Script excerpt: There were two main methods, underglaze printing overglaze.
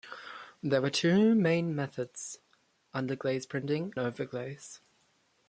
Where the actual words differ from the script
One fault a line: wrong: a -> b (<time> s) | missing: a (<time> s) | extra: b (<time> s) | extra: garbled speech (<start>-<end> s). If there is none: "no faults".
no faults